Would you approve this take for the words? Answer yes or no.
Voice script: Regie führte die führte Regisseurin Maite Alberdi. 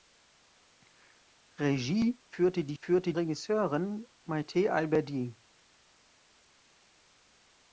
yes